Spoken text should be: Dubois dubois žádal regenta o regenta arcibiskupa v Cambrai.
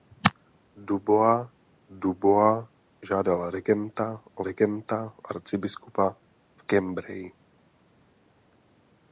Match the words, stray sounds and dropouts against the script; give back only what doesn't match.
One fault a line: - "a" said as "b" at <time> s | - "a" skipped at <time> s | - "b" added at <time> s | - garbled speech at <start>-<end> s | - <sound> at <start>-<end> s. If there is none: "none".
none